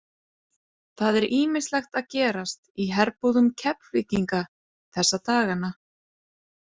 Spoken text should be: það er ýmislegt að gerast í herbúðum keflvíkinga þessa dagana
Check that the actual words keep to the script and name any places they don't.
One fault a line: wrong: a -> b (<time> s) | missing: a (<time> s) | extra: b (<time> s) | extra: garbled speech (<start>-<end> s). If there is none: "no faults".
no faults